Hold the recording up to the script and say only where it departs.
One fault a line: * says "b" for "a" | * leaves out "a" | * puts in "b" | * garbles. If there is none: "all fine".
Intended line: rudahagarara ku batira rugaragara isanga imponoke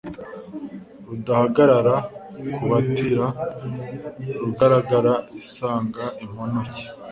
all fine